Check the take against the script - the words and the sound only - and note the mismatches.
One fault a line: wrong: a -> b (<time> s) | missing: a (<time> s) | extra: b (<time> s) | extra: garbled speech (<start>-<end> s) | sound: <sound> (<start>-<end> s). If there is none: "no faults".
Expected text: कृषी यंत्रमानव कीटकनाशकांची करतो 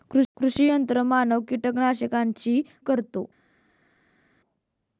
no faults